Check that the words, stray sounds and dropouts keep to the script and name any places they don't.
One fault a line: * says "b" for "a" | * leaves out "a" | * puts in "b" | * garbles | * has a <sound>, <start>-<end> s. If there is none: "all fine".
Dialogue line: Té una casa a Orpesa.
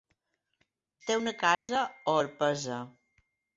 * has a dropout, 1.5-1.7 s